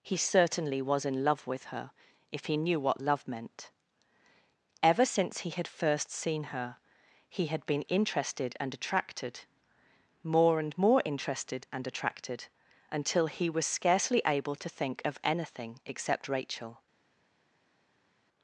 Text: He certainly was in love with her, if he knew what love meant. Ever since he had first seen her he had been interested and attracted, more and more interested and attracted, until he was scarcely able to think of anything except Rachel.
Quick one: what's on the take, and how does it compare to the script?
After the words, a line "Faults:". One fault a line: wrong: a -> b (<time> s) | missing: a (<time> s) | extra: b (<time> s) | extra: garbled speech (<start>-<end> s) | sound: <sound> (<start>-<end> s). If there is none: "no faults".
He certainly was in love with her, if he knew what love meant. Ever since he had first seen her he had been interested and attracted, more and more interested and attracted, until he was scarcely able to think of anything except Rachel.
Faults:
no faults